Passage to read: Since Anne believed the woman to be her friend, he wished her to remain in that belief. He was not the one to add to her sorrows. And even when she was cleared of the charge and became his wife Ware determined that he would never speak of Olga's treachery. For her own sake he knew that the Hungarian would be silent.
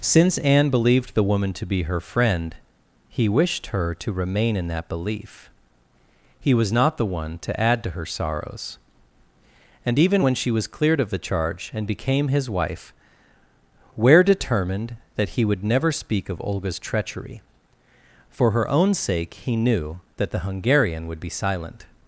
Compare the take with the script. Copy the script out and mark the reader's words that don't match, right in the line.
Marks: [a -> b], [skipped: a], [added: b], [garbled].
Since Anne believed the woman to be her friend, he wished her to remain in that belief. He was not the one to add to her sorrows. And even when she was cleared of the charge and became his wife Ware determined that he would never speak of Olga's treachery. For her own sake he knew that the Hungarian would be silent.